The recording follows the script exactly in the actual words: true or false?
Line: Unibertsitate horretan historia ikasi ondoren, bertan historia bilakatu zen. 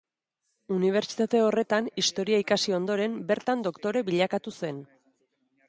false